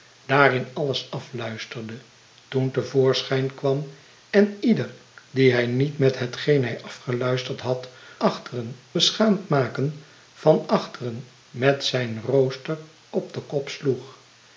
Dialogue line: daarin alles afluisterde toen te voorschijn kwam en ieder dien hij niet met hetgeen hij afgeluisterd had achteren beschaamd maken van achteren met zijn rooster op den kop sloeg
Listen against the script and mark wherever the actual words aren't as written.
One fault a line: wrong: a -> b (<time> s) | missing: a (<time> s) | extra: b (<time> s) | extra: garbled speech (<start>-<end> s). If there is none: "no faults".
no faults